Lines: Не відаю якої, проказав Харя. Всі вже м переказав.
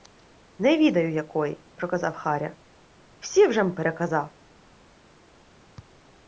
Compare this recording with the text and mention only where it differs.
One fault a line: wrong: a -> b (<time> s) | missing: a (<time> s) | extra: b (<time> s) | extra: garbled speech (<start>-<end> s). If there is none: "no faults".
no faults